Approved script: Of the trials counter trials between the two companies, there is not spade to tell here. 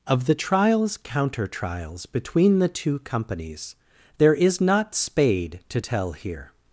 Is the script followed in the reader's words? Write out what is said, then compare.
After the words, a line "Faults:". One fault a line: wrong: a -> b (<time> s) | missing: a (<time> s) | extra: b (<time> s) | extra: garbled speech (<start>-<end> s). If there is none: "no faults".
Of the trials counter trials between the two companies, there is not spade to tell here.
Faults:
no faults